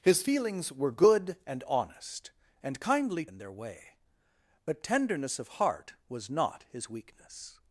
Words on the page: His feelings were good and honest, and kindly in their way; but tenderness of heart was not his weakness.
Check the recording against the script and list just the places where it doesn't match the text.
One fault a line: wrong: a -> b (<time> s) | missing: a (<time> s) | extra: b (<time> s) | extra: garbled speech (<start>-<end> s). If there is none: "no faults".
no faults